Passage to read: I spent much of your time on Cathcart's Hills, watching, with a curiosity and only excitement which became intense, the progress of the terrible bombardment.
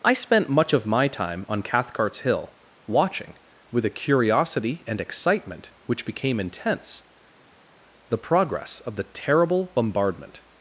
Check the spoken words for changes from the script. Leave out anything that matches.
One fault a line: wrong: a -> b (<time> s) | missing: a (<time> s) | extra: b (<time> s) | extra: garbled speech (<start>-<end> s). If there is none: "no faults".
wrong: your -> my (0.9 s)
wrong: Hills -> Hill (2.2 s)
missing: only (5.0 s)